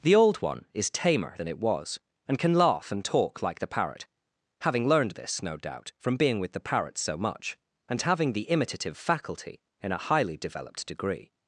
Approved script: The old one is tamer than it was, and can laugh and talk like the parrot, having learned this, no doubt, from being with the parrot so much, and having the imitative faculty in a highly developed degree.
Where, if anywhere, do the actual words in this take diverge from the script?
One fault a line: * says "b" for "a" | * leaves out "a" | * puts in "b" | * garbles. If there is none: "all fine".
all fine